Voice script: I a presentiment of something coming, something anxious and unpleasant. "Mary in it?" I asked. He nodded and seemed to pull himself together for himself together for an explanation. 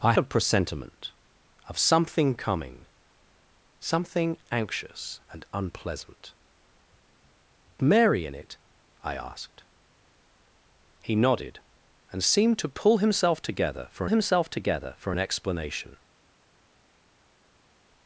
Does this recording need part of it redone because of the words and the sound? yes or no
no